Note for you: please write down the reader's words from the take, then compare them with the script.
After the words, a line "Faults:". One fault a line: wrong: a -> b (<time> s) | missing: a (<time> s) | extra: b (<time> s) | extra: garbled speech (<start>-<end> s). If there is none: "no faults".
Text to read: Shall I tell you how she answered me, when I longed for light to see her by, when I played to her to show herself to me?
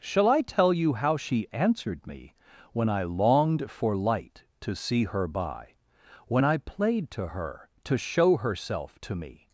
Shall I tell you how she answered me, when I longed for light to see her by, when I played to her to show herself to me?
Faults:
no faults